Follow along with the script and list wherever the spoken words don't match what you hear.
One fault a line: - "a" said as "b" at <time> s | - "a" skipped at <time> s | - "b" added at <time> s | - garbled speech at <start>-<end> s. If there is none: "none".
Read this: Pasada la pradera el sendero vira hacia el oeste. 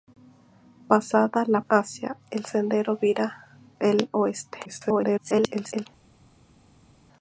- "pradera" said as "hacia" at 1.7 s
- "hacia" skipped at 3.5 s
- garbled speech at 4.7-5.9 s